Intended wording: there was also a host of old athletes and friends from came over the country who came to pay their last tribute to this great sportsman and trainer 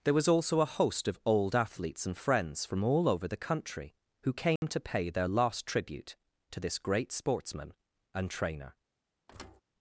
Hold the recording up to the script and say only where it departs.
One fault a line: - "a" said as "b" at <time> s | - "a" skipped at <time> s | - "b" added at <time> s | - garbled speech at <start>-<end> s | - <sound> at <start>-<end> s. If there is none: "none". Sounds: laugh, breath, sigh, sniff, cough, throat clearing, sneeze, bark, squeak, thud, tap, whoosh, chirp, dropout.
- "came" said as "all" at 2.8 s
- dropout at 4.6-4.6 s
- thud at 9.3-9.6 s